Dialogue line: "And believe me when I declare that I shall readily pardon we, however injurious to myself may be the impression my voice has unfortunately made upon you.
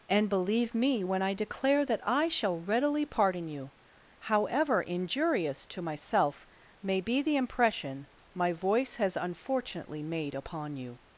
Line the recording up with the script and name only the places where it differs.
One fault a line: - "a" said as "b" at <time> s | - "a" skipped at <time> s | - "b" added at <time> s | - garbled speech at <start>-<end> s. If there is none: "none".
- "we" said as "you" at 3.5 s